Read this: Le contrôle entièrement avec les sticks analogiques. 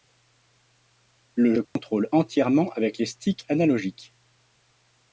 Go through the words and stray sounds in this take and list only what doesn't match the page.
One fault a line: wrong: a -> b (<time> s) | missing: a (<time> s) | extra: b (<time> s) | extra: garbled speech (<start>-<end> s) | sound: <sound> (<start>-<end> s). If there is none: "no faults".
sound: dropout (1.6-1.8 s)